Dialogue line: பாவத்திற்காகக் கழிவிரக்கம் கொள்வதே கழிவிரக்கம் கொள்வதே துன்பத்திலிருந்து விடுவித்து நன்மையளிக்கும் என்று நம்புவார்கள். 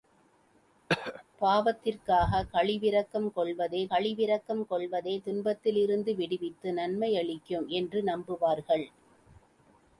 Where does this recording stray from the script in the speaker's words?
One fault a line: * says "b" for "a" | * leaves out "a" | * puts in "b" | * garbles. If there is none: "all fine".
all fine